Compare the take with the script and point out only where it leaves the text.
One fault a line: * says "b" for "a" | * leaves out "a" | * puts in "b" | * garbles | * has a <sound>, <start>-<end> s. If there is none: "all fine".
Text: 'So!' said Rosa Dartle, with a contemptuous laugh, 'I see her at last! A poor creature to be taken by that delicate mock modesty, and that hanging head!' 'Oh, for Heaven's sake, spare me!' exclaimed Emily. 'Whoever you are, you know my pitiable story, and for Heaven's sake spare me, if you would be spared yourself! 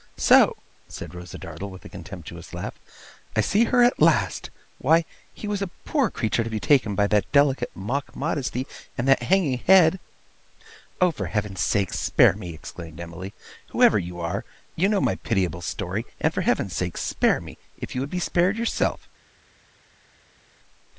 * puts in "Why he was"